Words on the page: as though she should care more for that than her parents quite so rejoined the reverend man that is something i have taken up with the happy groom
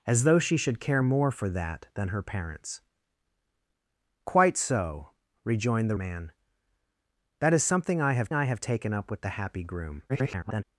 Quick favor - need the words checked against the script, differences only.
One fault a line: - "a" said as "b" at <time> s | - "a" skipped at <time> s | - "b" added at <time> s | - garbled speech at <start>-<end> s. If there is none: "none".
- "reverend" skipped at 6.0 s
- "i have" added at 8.3 s
- garbled speech at 10.1-10.6 s